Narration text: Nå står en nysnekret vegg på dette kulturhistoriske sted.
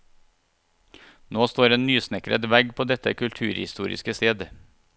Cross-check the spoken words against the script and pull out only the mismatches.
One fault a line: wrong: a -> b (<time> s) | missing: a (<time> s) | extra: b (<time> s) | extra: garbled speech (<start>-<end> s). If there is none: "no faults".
no faults